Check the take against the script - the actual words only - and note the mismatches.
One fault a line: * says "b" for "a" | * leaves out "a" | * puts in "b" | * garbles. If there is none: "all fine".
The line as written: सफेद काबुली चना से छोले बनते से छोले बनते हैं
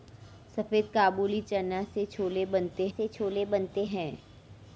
all fine